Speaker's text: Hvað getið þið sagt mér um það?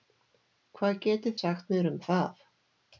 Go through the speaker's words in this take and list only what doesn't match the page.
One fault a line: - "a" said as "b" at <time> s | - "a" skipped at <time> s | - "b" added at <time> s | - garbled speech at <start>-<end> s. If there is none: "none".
- "þið" skipped at 1.4 s